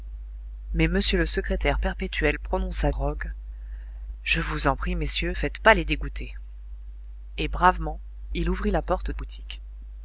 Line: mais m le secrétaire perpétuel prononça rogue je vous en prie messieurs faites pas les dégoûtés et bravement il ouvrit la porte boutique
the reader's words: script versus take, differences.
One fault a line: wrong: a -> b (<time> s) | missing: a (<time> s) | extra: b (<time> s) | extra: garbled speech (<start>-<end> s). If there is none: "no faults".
no faults